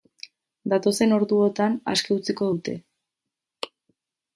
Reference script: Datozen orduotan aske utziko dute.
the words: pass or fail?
pass